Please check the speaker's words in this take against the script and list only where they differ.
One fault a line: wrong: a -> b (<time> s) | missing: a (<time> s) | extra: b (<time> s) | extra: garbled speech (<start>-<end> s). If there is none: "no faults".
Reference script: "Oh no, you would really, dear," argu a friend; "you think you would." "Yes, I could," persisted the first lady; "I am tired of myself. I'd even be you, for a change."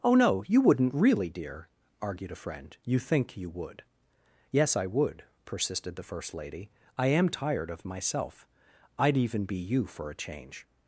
wrong: would -> wouldn't (0.6 s)
wrong: argu -> argued (2.0 s)
wrong: could -> would (4.9 s)